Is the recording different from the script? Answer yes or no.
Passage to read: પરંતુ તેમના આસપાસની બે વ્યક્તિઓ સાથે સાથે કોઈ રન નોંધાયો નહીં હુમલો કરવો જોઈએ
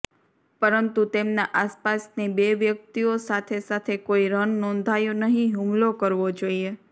no